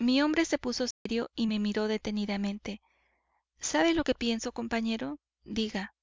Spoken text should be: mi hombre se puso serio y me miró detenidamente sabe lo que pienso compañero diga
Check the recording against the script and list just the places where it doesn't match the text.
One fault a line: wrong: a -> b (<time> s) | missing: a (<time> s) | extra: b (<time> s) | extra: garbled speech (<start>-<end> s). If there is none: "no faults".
no faults